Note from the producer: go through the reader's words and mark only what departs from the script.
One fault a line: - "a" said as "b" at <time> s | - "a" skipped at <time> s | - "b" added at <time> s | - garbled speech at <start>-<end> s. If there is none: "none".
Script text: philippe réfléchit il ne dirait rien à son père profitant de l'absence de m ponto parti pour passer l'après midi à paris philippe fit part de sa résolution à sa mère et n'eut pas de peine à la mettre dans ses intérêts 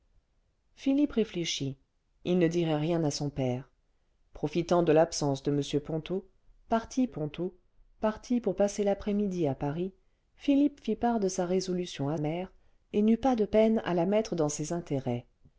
- "ponto parti" added at 7.1 s
- "sa" skipped at 12.2 s